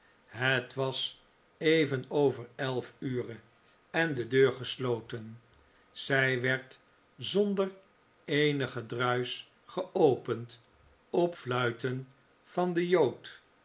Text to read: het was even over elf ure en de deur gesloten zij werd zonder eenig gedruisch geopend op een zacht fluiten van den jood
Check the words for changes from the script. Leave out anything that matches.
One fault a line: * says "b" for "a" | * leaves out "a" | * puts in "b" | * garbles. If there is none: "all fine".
* leaves out "een zacht"